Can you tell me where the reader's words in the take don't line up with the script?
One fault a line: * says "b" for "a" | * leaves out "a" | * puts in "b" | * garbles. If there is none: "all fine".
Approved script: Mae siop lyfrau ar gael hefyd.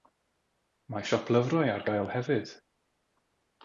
all fine